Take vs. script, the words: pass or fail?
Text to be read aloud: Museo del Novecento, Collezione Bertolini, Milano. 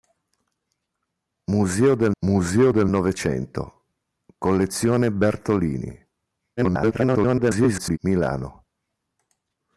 fail